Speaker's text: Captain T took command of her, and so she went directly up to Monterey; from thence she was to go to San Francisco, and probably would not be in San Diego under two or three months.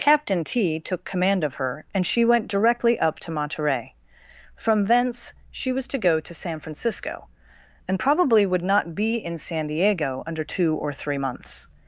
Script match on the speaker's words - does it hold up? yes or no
no